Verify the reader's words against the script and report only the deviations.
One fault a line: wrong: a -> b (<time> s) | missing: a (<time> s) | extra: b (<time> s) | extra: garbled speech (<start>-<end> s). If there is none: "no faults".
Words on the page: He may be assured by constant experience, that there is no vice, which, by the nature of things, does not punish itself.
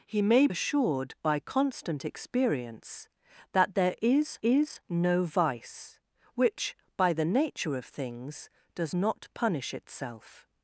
missing: be (0.5 s)
extra: is (4.4 s)